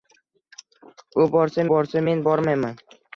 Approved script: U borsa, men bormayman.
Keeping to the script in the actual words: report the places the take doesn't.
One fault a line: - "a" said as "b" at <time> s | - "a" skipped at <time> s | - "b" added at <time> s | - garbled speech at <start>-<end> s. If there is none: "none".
- "borsa" added at 1.7 s